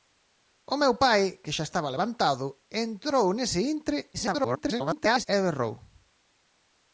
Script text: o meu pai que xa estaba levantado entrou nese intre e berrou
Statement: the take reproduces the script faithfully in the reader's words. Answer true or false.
false